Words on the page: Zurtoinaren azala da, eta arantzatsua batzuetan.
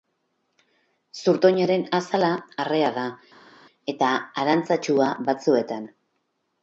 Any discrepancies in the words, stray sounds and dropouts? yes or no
yes